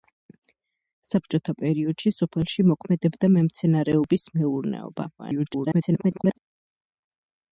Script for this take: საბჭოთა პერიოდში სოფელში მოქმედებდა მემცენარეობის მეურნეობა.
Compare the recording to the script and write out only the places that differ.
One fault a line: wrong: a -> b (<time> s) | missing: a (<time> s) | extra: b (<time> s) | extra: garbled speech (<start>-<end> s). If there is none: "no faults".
extra: garbled speech (5.2-6.4 s)